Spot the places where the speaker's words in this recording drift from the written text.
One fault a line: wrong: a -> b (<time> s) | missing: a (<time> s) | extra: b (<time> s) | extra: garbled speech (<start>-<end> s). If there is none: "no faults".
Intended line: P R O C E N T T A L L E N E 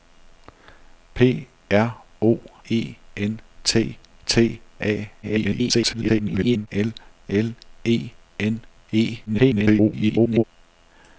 missing: C (2.4 s)
extra: garbled speech (5.2-6.7 s)
extra: garbled speech (9.3-10.4 s)